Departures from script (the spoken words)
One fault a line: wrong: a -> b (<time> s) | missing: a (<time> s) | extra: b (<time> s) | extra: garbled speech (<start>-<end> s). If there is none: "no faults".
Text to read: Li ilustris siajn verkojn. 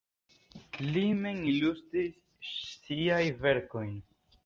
extra: mem (1.2 s)